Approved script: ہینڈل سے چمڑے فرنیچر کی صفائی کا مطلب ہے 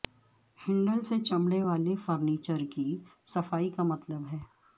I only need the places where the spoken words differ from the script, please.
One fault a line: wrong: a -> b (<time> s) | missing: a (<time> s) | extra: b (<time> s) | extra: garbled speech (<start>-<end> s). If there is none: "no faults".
extra: والے (1.6 s)